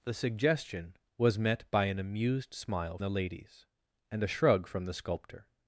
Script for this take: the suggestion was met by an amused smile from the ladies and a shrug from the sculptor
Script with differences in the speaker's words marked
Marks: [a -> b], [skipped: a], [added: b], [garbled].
the suggestion was met by an amused smile [skipped: from] the ladies and a shrug from the sculptor